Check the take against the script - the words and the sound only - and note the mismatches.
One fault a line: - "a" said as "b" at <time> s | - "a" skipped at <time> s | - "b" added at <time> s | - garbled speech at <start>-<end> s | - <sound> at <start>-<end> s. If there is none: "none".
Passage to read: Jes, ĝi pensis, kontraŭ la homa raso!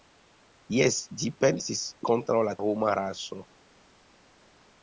none